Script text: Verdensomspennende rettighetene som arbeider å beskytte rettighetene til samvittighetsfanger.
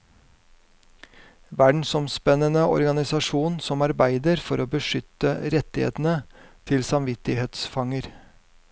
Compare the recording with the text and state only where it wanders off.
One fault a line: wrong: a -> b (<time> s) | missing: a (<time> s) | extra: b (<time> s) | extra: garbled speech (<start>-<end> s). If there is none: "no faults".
wrong: rettighetene -> organisasjon (2.8 s)
extra: for (4.5 s)